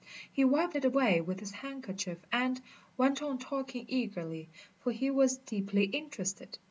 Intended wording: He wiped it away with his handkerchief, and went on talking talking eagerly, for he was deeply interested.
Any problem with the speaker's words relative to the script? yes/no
yes